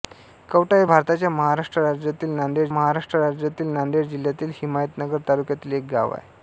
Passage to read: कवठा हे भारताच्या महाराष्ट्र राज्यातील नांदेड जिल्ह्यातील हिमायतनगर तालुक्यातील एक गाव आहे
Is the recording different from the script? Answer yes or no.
yes